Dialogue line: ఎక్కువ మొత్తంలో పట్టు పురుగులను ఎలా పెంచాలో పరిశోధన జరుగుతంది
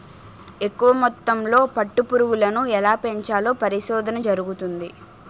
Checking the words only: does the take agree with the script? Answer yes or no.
yes